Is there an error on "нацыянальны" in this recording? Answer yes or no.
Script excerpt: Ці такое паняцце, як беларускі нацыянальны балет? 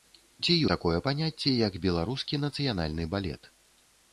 no